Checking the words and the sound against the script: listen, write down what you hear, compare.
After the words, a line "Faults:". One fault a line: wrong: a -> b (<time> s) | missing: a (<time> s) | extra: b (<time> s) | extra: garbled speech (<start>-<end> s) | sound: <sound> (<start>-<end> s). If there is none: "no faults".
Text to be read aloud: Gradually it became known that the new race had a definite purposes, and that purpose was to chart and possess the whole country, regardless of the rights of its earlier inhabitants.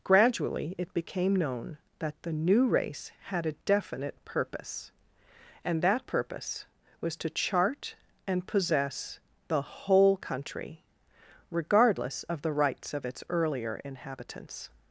Gradually it became known that the new race had a definite purpose, and that purpose was to chart and possess the whole country, regardless of the rights of its earlier inhabitants.
Faults:
wrong: purposes -> purpose (4.2 s)